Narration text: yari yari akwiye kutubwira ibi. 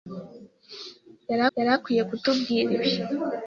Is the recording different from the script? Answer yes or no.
no